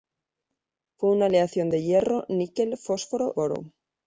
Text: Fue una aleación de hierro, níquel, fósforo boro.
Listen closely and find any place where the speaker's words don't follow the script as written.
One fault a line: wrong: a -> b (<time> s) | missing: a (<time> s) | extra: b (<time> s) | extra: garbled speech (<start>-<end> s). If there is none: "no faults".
no faults